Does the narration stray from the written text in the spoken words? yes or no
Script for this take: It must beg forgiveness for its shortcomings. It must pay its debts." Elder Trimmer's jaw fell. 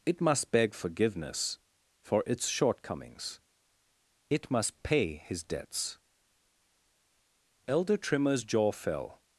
yes